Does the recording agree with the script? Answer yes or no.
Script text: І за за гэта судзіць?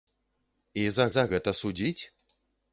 yes